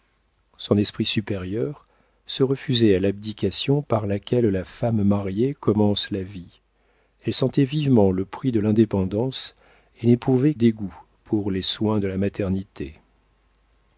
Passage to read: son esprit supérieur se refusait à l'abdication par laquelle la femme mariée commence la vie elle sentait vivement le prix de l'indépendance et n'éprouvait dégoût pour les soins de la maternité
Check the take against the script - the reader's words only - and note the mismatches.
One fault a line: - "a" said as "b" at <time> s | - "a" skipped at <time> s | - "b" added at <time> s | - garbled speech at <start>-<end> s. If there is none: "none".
none